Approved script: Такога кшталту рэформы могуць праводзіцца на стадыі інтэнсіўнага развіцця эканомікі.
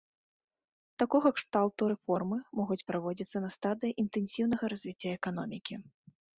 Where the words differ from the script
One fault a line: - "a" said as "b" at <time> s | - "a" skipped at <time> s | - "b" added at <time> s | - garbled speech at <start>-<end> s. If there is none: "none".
none